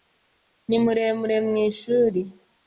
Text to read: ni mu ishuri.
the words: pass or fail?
fail